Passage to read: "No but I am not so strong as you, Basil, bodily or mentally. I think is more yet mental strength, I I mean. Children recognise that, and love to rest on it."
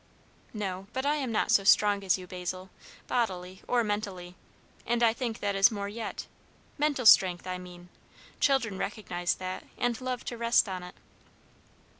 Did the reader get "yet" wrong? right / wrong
right